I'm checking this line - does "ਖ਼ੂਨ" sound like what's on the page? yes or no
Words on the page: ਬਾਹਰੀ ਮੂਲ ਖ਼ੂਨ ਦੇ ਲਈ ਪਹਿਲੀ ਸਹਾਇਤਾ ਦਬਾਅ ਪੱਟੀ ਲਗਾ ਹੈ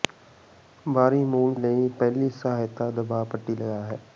no